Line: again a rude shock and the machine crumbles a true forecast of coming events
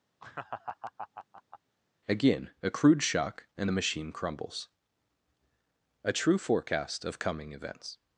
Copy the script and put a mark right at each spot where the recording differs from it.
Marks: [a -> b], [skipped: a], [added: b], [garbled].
again a [rude -> crude] shock and the machine crumbles a true forecast of coming events